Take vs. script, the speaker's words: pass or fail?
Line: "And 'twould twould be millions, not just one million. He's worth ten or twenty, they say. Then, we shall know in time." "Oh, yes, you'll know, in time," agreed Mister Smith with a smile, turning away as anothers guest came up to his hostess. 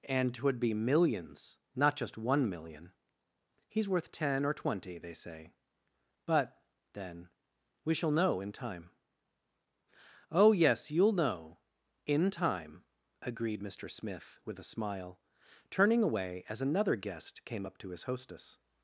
fail